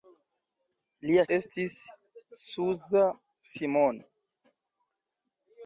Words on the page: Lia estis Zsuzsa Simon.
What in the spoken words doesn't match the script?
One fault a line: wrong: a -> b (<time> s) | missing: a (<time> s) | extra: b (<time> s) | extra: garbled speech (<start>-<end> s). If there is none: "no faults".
no faults